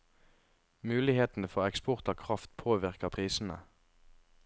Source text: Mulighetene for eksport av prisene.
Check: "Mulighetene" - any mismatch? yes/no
no